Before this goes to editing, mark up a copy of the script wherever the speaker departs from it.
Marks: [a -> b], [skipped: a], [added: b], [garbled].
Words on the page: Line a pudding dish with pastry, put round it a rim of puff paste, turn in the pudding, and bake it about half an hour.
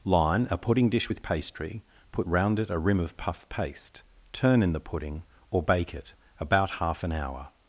Line a pudding dish with pastry, put round it a rim of puff paste, turn in the pudding, [and -> or] bake it about half an hour.